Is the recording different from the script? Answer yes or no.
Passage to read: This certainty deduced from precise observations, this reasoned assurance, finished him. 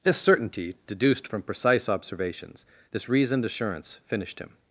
no